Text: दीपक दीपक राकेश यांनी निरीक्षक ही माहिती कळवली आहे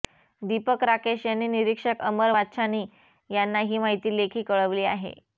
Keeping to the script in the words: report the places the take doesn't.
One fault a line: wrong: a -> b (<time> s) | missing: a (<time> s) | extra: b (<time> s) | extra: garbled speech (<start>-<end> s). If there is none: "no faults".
missing: दीपक (0.8 s)
extra: अमर वाच्छानी यांना (2.0 s)
extra: लेखी (4.2 s)